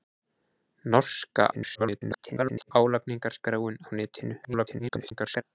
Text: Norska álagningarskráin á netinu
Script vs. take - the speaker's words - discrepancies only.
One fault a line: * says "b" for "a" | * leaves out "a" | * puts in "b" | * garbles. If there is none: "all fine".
* garbles
* garbles